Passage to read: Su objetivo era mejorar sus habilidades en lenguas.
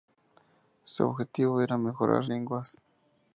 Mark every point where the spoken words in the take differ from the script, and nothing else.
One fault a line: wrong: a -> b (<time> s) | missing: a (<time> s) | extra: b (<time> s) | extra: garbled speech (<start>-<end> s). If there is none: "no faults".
missing: sus habilidades en (2.2 s)